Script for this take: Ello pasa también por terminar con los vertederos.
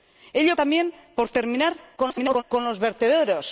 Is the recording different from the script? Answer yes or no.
yes